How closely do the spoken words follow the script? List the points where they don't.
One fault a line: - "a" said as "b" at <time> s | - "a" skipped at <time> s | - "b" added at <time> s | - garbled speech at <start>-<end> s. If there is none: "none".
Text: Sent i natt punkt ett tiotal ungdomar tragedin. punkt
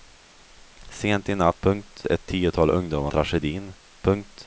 none